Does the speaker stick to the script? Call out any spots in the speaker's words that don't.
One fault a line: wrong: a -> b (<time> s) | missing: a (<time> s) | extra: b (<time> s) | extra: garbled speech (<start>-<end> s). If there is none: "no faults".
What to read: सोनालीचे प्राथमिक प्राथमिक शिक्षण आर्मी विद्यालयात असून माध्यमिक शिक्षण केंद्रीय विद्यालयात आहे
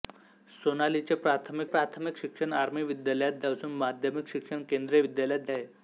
no faults